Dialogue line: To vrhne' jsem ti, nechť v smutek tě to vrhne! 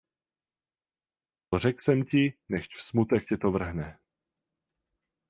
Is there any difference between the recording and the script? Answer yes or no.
yes